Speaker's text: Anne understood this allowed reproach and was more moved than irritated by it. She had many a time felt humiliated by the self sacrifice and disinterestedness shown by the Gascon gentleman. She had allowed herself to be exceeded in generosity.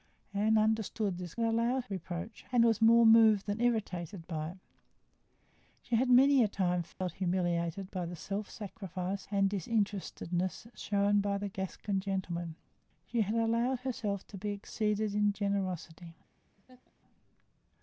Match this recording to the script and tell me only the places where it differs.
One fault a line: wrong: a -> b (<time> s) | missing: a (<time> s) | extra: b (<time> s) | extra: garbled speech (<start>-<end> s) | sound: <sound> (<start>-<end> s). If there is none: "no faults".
sound: dropout (6.9-7.0 s)
sound: laugh (16.5-16.9 s)